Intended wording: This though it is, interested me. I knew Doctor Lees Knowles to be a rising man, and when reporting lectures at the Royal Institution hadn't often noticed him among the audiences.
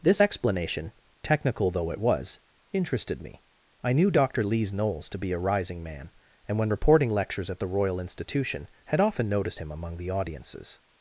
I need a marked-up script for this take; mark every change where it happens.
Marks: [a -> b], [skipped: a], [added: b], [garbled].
This [added: explanation technical] though it [is, -> was] interested me. I knew Doctor Lees Knowles to be a rising man, and when reporting lectures at the Royal Institution [hadn't -> had] often noticed him among the audiences.